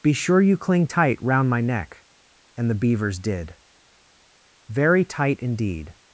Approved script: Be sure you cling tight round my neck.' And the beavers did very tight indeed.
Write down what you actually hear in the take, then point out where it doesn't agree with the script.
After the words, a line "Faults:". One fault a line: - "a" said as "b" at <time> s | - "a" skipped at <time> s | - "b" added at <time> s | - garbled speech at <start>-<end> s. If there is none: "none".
Be sure you cling tight round my neck.' And the beavers did very tight indeed.
Faults:
none